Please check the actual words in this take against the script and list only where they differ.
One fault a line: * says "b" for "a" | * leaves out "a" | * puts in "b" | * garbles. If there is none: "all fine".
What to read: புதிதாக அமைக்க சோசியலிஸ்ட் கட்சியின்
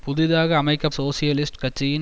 all fine